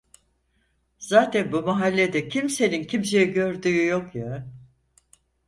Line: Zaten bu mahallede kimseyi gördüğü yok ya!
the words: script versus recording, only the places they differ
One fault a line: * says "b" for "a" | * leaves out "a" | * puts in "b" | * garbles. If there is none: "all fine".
* puts in "kimsenin"